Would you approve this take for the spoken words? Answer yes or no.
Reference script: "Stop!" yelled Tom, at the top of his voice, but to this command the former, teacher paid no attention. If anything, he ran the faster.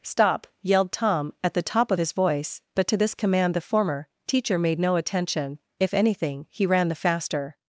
no